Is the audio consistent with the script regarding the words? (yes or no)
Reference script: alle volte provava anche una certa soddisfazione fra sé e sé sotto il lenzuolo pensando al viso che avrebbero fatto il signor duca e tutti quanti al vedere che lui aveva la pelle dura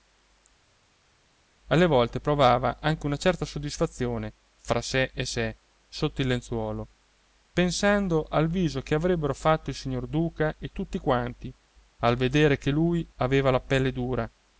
yes